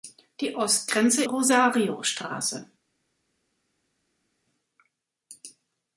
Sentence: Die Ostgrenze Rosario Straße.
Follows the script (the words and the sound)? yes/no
yes